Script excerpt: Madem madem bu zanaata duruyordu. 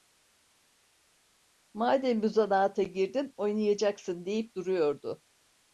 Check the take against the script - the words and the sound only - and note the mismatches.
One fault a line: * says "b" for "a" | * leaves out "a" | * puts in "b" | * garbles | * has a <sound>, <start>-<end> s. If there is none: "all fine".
* leaves out "madem"
* puts in "girdin oynayacaksın deyip"